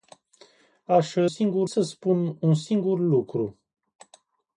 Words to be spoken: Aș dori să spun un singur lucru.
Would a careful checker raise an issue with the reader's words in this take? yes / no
yes